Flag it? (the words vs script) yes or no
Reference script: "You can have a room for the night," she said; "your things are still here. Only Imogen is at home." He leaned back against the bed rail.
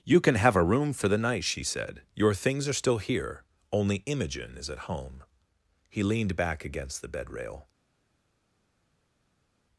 no